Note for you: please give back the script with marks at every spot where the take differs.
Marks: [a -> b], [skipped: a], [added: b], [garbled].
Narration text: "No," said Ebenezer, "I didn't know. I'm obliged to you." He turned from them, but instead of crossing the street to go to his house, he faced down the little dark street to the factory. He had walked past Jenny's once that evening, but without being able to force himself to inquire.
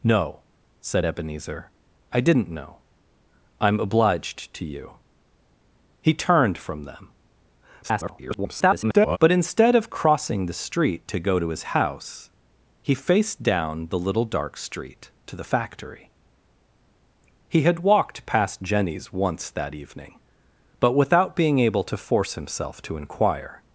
"No," said Ebenezer, "I didn't know. I'm obliged to you." He turned from them, [garbled] but instead of crossing the street to go to his house, he faced down the little dark street to the factory. He had walked past Jenny's once that evening, but without being able to force himself to inquire.